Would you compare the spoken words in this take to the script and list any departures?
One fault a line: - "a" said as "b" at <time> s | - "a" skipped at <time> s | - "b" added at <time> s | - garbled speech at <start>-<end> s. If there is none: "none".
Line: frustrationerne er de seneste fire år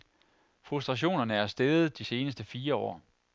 - "steget" added at 1.5 s